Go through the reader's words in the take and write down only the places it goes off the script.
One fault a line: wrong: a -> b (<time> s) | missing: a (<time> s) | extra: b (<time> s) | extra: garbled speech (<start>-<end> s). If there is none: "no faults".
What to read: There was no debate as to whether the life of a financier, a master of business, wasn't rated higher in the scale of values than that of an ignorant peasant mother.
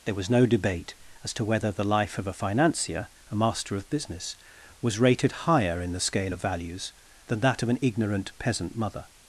wrong: wasn't -> was (4.8 s)